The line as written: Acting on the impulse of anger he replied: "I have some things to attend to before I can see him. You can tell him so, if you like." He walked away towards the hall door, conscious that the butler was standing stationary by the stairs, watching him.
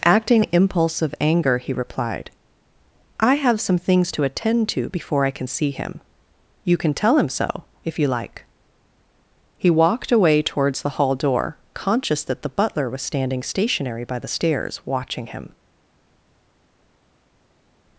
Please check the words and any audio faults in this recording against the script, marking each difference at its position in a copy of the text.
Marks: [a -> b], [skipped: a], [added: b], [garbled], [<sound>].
Acting [skipped: on] the impulse of anger he replied: "I have some things to attend to before I can see him. You can tell him so, if you like." He walked away towards the hall door, conscious that the butler was standing stationary by the stairs, watching him.